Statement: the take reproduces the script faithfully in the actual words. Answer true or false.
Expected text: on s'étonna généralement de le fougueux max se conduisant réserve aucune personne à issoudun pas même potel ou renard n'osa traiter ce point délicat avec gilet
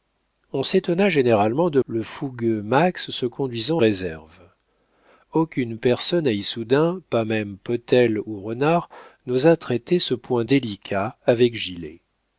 true